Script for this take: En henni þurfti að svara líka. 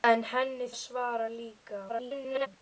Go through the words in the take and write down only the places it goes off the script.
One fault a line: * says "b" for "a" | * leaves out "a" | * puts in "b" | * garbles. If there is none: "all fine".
* leaves out "þurfti"
* garbles